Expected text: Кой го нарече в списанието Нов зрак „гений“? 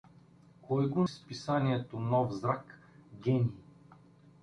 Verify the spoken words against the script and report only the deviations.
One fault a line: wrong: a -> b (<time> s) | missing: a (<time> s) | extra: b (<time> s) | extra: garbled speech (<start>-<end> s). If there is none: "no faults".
missing: нарече (1.0 s)